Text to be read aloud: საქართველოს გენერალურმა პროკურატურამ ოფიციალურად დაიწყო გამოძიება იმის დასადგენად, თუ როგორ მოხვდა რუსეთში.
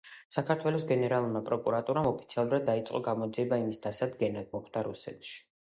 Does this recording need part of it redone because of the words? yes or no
yes